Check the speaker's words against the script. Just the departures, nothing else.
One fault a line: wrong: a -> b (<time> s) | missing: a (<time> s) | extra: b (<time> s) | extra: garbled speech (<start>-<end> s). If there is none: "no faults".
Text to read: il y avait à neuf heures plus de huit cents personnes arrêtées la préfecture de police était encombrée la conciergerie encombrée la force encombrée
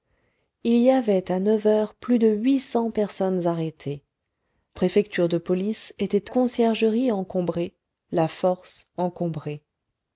missing: la (4.0 s)
missing: encombrée la (6.3 s)